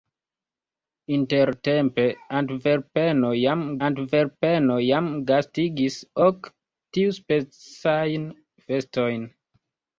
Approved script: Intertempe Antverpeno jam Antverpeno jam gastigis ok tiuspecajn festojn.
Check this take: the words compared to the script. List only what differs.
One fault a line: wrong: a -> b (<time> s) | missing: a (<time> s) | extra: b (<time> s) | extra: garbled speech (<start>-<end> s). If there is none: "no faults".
no faults